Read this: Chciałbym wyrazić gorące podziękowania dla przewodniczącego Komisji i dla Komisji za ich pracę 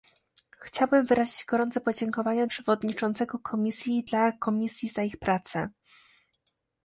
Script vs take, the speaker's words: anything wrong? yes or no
yes